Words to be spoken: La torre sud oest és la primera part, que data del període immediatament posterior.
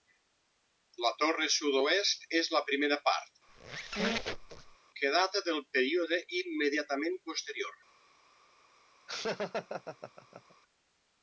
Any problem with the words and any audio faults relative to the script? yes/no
yes